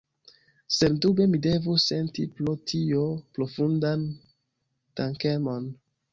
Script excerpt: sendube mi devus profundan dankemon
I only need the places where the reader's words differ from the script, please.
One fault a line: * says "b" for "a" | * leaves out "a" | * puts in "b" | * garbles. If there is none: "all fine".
* puts in "senti pro tio"